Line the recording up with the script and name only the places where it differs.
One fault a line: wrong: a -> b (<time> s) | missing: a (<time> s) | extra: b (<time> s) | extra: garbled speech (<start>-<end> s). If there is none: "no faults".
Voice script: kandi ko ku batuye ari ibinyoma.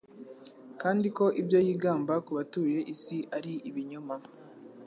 extra: ibyo yigamba (1.4 s)
extra: isi (2.9 s)